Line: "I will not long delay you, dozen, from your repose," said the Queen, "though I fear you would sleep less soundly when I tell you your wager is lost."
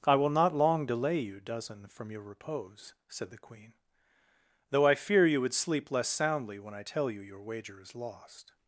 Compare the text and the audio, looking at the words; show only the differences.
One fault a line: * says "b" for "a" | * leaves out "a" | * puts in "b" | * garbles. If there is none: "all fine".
all fine